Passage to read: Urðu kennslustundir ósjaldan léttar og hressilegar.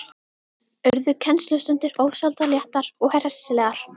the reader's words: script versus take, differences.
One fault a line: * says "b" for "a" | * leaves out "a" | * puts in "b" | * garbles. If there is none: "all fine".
all fine